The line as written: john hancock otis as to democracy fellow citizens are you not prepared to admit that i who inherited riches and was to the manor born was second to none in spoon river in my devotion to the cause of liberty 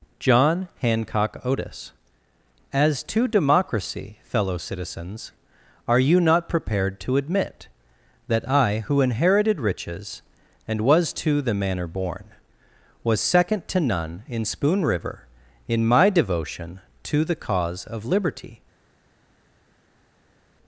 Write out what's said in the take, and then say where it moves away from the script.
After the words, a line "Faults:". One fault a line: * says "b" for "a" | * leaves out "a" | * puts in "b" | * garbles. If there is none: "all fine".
john hancock otis as to democracy fellow citizens are you not prepared to admit that i who inherited riches and was to the manor born was second to none in spoon river in my devotion to the cause of liberty
Faults:
all fine